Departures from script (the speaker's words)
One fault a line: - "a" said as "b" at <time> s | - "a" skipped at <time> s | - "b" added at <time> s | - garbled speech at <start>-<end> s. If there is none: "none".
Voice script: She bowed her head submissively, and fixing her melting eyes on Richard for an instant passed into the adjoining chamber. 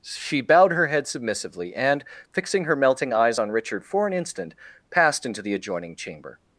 none